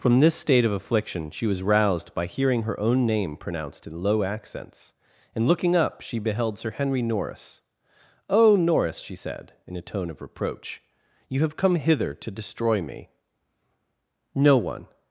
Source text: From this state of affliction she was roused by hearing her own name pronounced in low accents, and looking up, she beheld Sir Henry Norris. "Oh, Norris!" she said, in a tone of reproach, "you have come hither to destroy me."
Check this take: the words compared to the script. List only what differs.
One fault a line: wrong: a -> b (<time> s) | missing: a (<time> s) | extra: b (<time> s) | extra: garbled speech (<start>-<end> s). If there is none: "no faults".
extra: No one (14.3 s)